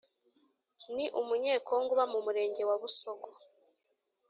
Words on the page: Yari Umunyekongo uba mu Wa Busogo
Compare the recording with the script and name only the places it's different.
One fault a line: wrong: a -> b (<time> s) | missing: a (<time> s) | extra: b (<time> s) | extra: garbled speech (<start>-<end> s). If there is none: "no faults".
wrong: Yari -> Ni (0.9 s)
extra: Murenge (2.2 s)